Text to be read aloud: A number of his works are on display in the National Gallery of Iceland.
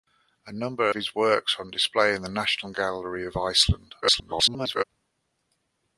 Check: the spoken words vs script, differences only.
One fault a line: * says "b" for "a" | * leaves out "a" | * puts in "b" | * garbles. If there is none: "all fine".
* leaves out "of"
* garbles